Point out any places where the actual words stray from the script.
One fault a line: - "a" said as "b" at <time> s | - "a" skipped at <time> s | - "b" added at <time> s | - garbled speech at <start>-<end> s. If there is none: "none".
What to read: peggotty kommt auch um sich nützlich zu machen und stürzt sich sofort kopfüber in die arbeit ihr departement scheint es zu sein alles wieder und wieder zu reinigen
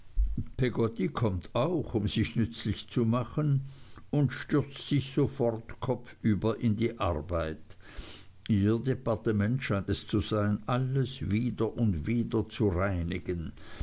none